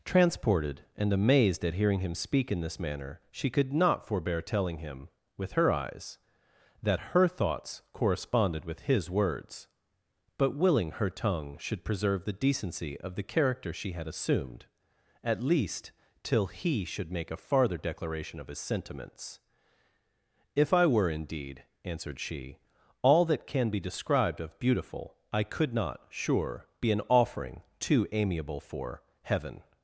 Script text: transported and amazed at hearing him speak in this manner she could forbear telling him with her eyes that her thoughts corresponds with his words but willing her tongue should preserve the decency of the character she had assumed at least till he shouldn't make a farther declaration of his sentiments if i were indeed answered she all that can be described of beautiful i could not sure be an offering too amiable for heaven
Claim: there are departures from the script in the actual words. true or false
true